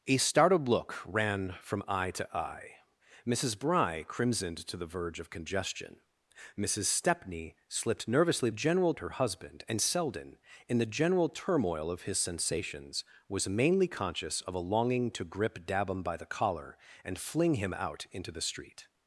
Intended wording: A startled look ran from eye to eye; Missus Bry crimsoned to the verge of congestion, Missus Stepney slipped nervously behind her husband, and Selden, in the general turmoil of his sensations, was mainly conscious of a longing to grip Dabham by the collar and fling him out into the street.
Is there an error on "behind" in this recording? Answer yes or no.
yes